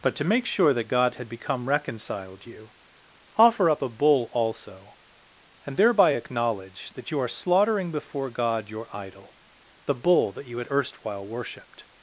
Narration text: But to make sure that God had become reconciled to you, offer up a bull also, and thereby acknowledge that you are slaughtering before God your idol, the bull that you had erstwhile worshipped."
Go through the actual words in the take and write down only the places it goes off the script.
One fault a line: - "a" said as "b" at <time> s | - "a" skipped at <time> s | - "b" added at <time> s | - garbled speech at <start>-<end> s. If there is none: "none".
- "to" skipped at 2.5 s